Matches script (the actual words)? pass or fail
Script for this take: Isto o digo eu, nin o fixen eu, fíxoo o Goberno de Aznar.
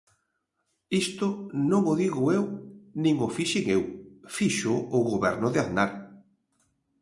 fail